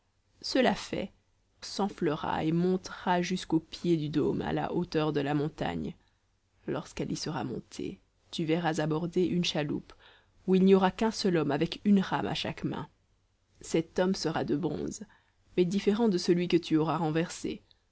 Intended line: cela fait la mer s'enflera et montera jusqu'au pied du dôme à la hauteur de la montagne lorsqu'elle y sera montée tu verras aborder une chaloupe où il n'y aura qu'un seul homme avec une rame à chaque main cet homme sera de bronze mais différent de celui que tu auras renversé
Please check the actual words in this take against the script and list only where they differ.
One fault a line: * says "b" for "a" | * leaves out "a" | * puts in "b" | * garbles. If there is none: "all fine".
* leaves out "la mer"